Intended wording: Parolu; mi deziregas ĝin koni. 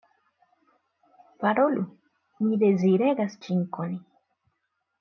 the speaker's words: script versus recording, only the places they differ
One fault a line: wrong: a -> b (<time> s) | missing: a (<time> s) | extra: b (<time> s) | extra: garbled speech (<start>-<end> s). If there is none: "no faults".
no faults